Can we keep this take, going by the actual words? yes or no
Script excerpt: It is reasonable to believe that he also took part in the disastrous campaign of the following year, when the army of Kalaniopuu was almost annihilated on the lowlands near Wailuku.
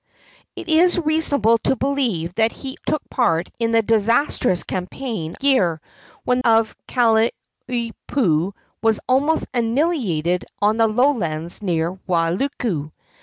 no